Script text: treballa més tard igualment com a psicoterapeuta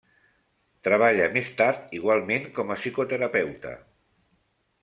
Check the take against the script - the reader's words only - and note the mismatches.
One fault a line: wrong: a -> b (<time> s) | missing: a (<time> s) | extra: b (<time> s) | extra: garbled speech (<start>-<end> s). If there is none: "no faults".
no faults